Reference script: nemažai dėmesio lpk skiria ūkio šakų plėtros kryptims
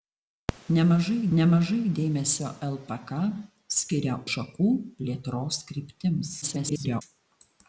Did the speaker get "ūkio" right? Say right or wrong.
wrong